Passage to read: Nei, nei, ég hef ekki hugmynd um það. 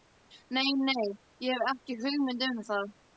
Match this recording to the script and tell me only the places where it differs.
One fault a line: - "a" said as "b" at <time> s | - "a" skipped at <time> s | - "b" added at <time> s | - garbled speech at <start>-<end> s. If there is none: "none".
none